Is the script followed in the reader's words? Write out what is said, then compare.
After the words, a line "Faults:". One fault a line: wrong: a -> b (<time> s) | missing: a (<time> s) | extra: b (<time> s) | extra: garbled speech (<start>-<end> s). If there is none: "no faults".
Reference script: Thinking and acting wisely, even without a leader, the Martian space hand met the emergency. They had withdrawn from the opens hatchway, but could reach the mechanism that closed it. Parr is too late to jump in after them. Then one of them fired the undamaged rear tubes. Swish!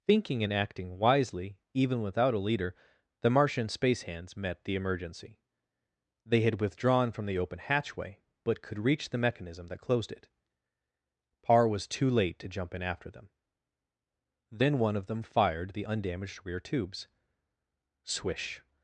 Thinking and acting wisely, even without a leader, the Martian space hands met the emergency. They had withdrawn from the open hatchway, but could reach the mechanism that closed it. Parr was too late to jump in after them. Then one of them fired the undamaged rear tubes. Swish!
Faults:
wrong: hand -> hands (4.0 s)
wrong: opens -> open (7.4 s)
wrong: is -> was (11.7 s)